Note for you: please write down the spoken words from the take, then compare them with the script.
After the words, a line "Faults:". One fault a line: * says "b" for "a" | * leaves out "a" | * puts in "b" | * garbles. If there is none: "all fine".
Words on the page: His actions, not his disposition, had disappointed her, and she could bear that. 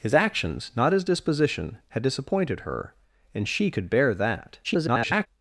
His actions, not his disposition, had disappointed her, and she could bear that. [garbled]
Faults:
* garbles